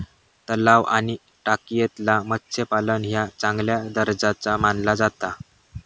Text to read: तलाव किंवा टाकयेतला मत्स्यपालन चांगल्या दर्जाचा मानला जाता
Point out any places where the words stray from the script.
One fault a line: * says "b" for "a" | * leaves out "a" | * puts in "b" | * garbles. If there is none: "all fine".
* says "आणि" for "किंवा"
* puts in "ह्या"